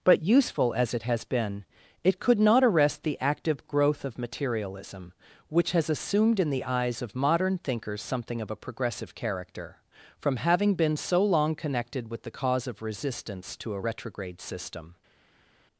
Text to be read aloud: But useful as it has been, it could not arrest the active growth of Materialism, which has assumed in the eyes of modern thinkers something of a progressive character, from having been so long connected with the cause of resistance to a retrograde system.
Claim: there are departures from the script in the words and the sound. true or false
false